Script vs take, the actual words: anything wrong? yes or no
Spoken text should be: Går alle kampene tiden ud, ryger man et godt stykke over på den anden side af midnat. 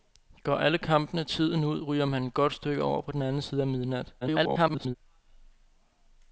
yes